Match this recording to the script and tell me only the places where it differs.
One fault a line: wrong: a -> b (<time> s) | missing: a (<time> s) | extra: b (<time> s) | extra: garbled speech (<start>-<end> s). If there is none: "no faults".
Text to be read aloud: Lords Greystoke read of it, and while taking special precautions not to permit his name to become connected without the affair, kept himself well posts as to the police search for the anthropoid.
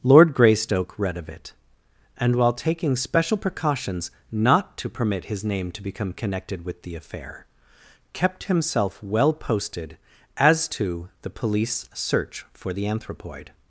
wrong: Lords -> Lord (0.0 s)
wrong: without -> with (6.7 s)
wrong: posts -> posted (9.3 s)